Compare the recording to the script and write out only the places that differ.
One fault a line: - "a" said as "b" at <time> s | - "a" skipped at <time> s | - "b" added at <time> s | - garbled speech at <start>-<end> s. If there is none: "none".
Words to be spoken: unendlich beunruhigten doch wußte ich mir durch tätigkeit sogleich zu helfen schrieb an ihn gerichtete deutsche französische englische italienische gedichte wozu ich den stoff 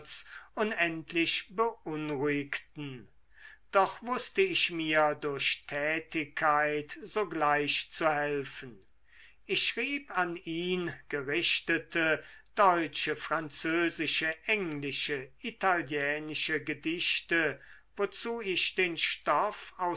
- "ich" added at 9.4 s